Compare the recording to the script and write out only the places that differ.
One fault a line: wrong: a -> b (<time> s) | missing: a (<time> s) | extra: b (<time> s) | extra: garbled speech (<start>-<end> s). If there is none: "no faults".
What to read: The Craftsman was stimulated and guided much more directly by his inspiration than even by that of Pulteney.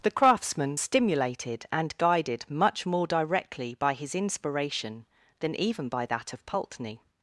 missing: was (0.8 s)